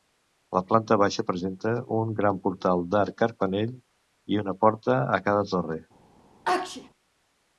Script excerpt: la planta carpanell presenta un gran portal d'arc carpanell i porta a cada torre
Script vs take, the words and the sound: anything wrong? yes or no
yes